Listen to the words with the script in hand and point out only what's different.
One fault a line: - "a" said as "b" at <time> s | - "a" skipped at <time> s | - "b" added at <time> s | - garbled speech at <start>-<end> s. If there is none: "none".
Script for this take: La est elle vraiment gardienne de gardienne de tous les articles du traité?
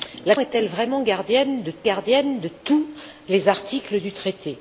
none